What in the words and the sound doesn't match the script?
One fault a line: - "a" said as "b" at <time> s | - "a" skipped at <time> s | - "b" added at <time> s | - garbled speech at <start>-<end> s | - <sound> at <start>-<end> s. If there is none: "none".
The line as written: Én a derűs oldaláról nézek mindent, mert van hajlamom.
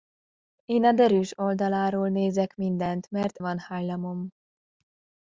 none